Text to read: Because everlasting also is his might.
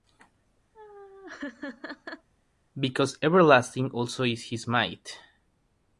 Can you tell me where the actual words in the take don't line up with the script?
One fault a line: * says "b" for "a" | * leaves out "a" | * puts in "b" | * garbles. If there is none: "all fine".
all fine